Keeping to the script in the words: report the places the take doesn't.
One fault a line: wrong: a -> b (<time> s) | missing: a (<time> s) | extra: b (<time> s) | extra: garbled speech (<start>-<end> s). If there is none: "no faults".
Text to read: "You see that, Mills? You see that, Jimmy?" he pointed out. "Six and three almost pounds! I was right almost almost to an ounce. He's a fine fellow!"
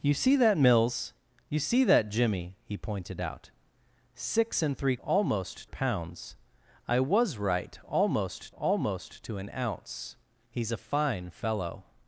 no faults